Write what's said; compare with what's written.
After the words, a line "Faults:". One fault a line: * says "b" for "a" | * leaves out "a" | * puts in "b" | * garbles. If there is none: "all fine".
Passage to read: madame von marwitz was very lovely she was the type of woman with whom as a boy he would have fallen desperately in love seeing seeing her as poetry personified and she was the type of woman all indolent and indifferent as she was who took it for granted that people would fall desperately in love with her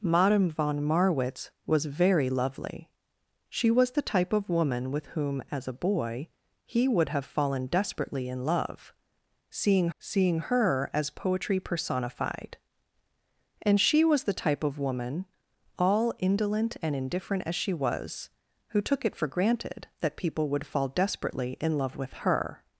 madame von marwitz was very lovely she was the type of woman with whom as a boy he would have fallen desperately in love seeing seeing her as poetry personified and she was the type of woman all indolent and indifferent as she was who took it for granted that people would fall desperately in love with her
Faults:
all fine